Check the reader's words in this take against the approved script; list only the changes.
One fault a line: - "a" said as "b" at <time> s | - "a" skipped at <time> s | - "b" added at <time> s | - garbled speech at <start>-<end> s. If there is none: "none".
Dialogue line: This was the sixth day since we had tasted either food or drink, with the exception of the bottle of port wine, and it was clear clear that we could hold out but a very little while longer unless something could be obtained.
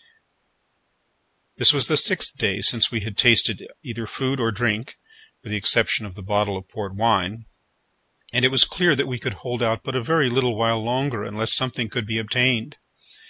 - "clear" skipped at 8.9 s